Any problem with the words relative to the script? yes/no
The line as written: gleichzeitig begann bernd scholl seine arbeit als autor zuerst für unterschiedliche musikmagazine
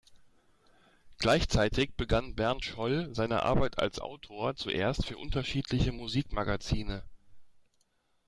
no